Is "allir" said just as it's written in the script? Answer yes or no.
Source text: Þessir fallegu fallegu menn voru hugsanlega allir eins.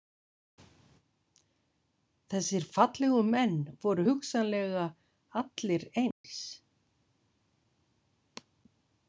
yes